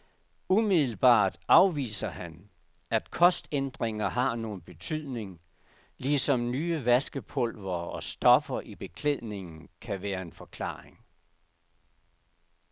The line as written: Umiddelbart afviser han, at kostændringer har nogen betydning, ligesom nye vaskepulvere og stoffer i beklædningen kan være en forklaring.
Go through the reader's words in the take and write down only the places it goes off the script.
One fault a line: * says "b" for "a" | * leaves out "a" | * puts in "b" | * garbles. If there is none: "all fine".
all fine